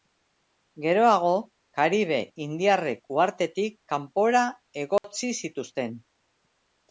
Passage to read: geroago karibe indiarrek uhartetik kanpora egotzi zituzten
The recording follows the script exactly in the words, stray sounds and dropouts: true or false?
false